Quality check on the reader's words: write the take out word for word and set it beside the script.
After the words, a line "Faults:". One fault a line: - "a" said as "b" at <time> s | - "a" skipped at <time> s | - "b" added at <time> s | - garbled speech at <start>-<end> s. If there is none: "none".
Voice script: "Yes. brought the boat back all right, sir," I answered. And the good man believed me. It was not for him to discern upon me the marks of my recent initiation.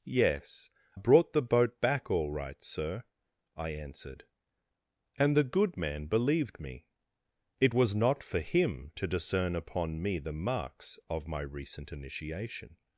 "Yes. brought the boat back all right, sir," I answered. And the good man believed me. It was not for him to discern upon me the marks of my recent initiation.
Faults:
none